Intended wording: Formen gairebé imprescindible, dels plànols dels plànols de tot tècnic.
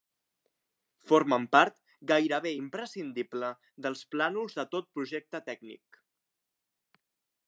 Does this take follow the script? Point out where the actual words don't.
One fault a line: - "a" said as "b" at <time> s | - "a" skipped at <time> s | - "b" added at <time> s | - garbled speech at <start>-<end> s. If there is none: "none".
- "part" added at 1.6 s
- "dels plànols" skipped at 4.6 s
- "projecte" added at 5.0 s